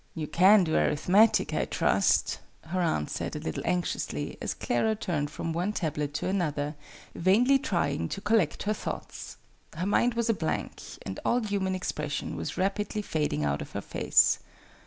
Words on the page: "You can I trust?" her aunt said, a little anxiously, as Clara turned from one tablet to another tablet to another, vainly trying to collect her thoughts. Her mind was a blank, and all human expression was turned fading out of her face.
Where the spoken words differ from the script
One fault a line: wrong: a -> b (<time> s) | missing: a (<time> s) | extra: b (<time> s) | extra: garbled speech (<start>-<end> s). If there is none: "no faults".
extra: do Arithmetic (0.6 s)
missing: tablet to another (6.7 s)
wrong: turned -> rapidly (12.6 s)